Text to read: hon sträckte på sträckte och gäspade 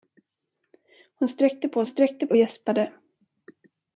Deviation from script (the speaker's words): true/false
false